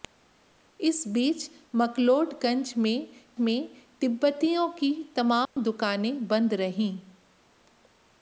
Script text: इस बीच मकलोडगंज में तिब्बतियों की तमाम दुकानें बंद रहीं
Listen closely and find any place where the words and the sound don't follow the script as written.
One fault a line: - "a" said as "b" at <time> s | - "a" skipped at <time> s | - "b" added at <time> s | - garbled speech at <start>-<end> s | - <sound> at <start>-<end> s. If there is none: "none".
- "में" added at 3.4 s
- dropout at 5.5-5.6 s